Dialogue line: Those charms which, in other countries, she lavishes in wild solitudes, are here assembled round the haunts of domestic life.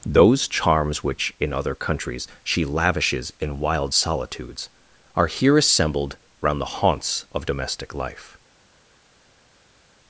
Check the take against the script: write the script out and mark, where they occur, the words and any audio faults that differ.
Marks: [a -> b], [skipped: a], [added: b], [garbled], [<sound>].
Those charms which, in other countries, she lavishes in wild solitudes, are here assembled round the haunts of domestic life.